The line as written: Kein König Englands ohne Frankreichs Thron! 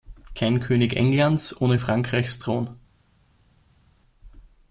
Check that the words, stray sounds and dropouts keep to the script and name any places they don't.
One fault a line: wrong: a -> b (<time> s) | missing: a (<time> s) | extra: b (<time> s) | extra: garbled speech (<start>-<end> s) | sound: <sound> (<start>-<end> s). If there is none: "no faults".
no faults